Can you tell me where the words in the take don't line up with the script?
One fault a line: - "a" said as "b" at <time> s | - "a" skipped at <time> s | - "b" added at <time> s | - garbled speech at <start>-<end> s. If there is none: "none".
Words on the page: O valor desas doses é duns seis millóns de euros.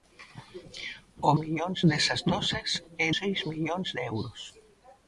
- "valor" said as "millóns" at 1.4 s
- "duns" skipped at 3.1 s